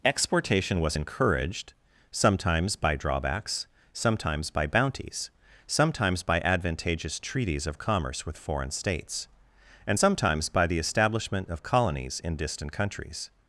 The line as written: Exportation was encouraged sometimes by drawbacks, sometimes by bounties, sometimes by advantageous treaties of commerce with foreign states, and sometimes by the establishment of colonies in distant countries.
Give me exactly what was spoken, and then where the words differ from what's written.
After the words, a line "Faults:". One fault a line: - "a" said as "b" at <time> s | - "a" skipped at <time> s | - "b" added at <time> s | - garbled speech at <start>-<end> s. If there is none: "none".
Exportation was encouraged sometimes by drawbacks, sometimes by bounties, sometimes by advantageous treaties of commerce with foreign states, and sometimes by the establishment of colonies in distant countries.
Faults:
none